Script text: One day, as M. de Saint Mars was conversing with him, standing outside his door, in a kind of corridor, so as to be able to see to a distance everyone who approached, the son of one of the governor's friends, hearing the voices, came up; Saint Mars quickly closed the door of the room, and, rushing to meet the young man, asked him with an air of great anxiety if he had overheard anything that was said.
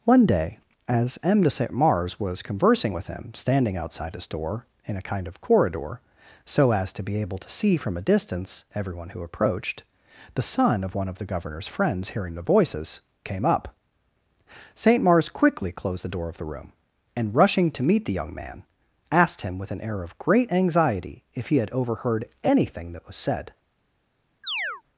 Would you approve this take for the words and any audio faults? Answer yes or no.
no